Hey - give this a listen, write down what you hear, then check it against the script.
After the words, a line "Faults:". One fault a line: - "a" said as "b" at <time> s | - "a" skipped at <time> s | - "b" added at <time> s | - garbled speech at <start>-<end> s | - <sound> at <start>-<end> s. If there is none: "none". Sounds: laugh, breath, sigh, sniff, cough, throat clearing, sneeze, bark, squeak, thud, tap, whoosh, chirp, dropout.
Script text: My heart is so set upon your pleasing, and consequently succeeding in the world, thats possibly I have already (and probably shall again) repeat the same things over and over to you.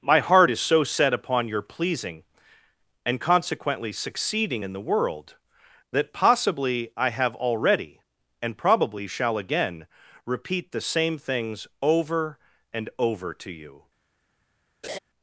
My heart is so set upon your pleasing, and consequently succeeding in the world, that possibly I have already (and probably shall again) repeat the same things over and over to you.
Faults:
- "thats" said as "that" at 5.9 s
- laugh at 14.8-15.0 s